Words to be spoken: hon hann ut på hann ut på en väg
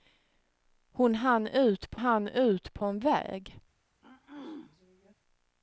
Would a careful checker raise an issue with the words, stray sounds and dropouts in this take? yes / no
yes